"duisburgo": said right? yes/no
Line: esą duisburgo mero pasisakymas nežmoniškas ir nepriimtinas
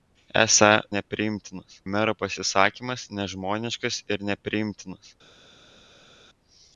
no